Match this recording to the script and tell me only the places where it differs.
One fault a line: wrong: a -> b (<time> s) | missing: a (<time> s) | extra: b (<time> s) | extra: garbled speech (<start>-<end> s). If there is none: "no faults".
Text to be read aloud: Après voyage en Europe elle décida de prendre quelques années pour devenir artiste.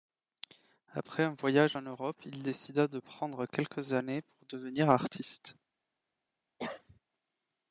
extra: un (1.2 s)
wrong: elle -> il (2.2 s)